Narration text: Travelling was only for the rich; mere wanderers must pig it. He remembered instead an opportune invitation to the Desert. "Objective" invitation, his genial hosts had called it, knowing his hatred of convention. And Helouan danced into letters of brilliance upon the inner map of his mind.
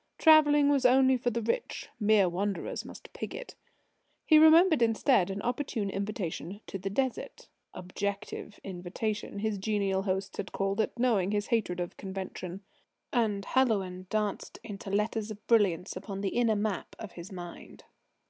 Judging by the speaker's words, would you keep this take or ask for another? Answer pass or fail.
pass